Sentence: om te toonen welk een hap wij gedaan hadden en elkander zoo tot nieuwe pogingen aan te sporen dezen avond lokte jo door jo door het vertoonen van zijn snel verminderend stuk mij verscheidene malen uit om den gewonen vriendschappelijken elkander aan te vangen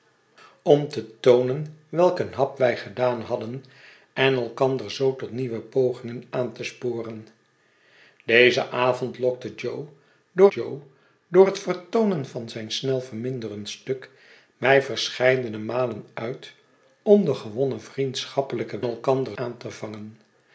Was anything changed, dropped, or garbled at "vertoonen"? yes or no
no